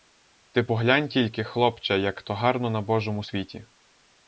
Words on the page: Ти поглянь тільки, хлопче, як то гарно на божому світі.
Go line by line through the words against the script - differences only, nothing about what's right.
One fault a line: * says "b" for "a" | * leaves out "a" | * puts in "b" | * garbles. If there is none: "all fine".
all fine